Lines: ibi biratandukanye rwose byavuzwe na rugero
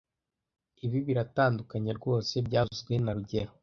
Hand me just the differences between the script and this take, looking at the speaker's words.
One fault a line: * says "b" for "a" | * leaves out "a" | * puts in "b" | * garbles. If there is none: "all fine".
all fine